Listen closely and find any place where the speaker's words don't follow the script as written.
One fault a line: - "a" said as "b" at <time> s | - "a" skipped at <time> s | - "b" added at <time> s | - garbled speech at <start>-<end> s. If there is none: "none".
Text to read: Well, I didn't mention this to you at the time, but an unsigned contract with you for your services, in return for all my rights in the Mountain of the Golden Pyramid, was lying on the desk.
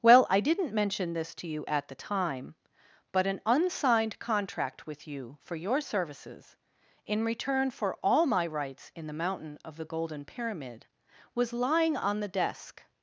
none